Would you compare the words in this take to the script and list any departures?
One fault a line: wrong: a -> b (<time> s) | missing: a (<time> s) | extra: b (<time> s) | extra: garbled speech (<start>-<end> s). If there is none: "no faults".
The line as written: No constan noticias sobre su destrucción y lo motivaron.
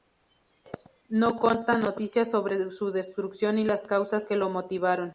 extra: las causas que (3.6 s)